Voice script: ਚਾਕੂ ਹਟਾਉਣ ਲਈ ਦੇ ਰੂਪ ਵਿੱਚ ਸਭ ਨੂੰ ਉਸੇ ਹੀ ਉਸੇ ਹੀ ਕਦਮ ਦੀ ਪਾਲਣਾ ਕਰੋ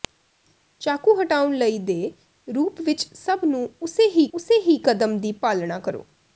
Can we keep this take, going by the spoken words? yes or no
yes